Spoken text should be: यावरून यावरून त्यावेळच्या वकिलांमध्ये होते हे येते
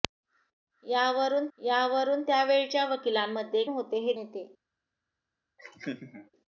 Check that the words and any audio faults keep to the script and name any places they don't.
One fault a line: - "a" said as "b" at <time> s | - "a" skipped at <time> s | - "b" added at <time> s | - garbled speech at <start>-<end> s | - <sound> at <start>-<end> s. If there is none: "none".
- laugh at 5.6-6.3 s